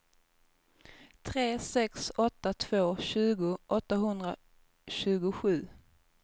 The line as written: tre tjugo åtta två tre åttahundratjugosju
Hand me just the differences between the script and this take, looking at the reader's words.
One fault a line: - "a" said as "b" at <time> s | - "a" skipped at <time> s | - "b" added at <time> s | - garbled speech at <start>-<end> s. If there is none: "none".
- "tjugo" said as "sex" at 1.6 s
- "tre" said as "tjugo" at 3.0 s